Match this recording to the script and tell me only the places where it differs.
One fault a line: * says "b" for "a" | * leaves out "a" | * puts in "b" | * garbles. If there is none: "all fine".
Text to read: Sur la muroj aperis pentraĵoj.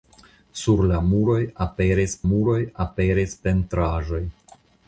* puts in "muroj aperis"